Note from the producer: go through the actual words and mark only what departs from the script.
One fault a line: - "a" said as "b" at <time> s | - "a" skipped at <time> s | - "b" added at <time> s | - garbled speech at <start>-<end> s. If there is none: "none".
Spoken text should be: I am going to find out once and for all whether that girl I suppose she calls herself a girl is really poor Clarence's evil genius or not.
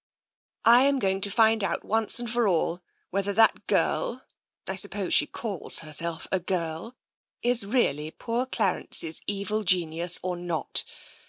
none